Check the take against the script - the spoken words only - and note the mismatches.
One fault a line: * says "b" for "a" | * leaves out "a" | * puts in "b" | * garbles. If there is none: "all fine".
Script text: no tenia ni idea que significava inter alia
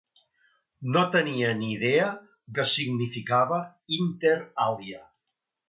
all fine